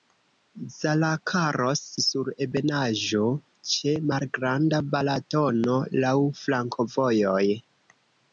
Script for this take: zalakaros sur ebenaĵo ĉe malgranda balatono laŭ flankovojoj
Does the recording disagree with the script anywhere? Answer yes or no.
no